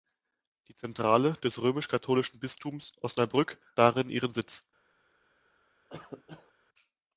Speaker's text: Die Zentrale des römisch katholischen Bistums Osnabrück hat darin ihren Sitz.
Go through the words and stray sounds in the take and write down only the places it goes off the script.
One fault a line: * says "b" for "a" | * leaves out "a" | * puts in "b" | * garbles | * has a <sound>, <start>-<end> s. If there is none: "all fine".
* leaves out "hat"
* has a cough, 5.9-6.5 s